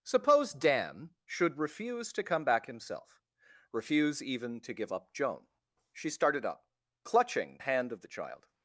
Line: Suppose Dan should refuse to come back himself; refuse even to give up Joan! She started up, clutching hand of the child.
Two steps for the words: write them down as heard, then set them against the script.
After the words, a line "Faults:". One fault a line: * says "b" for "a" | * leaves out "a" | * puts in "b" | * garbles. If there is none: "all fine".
Suppose Dan should refuse to come back himself; refuse even to give up Joan! She started up, clutching hand of the child.
Faults:
all fine